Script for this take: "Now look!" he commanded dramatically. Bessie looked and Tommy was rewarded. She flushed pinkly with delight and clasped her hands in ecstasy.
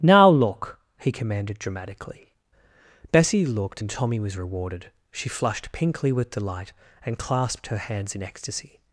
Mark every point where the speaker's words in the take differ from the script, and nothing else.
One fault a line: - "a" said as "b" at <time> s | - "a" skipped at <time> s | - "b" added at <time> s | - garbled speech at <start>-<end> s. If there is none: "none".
none